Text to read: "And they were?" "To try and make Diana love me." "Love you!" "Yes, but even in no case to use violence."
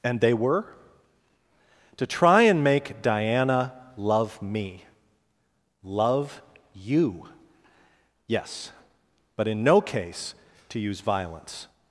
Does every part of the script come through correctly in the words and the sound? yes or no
no